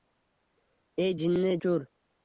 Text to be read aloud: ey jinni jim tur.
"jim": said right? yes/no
no